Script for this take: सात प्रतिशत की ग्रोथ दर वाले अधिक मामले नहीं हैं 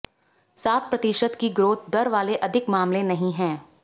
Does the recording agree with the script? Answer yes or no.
yes